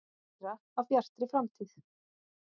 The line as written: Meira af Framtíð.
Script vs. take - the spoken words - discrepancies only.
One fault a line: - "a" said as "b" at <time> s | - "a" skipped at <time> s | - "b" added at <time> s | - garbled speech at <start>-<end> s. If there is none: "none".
- "Bjartri" added at 0.9 s